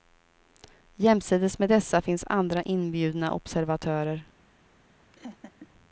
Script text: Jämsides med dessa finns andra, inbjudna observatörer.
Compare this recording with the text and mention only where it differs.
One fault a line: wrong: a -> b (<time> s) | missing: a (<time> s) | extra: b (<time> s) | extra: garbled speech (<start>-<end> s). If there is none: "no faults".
no faults